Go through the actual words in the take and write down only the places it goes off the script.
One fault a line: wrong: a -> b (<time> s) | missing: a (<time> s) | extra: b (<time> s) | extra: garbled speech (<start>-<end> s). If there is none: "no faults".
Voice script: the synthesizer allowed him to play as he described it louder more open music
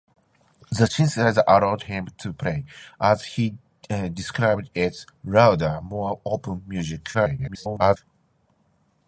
extra: garbled speech (7.1-8.0 s)